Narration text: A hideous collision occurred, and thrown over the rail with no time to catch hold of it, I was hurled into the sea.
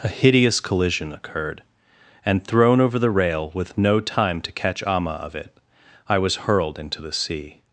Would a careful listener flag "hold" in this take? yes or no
yes